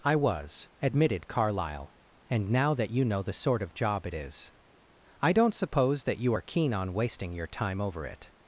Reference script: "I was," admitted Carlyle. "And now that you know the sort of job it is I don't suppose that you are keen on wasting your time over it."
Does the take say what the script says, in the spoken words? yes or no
yes